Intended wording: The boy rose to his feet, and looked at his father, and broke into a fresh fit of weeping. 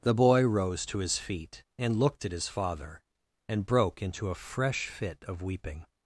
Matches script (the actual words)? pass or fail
pass